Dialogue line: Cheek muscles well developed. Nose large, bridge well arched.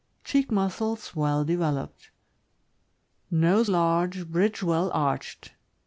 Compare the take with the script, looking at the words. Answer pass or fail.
pass